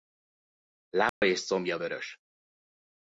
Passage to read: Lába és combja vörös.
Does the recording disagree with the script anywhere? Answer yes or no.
no